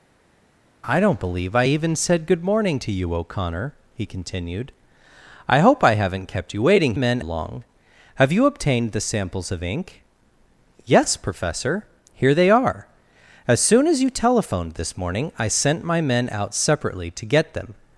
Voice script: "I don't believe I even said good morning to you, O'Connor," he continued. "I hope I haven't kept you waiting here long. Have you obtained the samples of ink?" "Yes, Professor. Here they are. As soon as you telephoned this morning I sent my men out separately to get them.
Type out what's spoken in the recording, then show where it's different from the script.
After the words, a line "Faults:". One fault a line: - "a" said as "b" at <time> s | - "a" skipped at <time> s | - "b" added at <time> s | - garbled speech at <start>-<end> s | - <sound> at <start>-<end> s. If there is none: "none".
"I don't believe I even said good morning to you, O'Connor," he continued. "I hope I haven't kept you waiting men long. Have you obtained the samples of ink?" "Yes, Professor. Here they are. As soon as you telephoned this morning I sent my men out separately to get them.
Faults:
- "here" said as "men" at 6.9 s